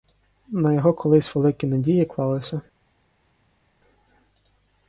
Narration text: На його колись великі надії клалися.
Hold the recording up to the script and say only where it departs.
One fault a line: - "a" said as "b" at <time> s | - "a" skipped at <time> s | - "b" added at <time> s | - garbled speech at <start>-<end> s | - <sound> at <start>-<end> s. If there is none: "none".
none